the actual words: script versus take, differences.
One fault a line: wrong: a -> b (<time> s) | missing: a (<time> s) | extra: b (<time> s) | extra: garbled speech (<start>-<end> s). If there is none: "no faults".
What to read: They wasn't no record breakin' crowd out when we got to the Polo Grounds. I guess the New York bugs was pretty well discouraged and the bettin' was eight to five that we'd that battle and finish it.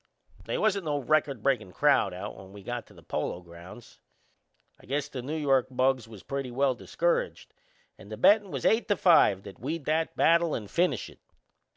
no faults